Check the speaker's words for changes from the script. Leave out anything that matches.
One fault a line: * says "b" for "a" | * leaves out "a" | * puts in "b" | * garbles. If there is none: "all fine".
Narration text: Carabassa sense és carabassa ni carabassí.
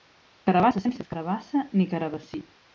all fine